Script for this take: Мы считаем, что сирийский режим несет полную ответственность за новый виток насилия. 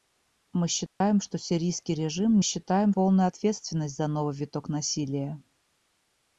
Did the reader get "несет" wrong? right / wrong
wrong